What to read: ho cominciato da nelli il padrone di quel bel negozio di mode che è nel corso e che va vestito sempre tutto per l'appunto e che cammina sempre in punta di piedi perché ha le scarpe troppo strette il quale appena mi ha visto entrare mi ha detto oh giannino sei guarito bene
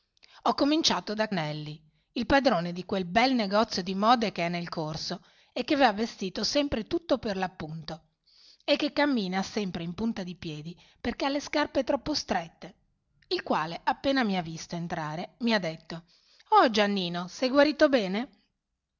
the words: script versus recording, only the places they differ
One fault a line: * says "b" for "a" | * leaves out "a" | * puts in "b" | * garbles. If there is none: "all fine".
all fine